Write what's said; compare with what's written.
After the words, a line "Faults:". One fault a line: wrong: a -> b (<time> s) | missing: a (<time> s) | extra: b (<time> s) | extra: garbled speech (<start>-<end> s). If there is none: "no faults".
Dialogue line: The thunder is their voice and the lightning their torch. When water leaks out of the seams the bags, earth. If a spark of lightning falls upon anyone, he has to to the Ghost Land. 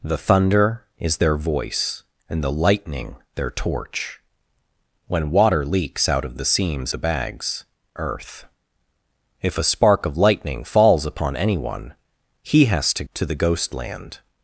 The thunder is their voice and the lightning their torch. When water leaks out of the seams the bags, earth. If a spark of lightning falls upon anyone, he has to to the Ghost Land.
Faults:
no faults